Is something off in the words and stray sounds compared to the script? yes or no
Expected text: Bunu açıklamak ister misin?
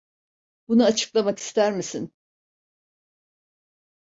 no